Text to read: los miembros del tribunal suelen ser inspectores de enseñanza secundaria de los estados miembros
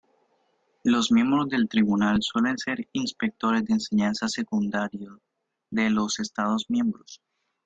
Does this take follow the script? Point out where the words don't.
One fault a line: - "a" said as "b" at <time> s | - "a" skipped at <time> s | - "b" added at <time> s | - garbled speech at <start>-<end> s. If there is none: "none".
none